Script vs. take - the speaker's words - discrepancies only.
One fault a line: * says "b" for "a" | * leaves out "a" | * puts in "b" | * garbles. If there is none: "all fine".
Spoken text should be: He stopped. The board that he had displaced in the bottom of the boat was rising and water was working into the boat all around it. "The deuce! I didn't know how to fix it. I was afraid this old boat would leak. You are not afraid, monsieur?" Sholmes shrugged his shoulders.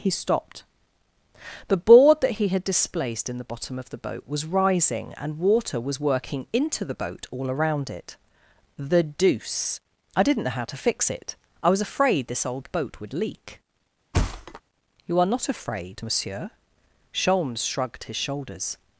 all fine